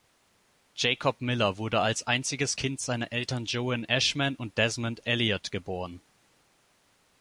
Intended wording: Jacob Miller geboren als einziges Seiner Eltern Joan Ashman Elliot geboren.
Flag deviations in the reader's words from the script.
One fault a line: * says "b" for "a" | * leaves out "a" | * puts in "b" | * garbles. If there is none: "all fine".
* says "wurde" for "geboren"
* puts in "Kind"
* puts in "und Desmond"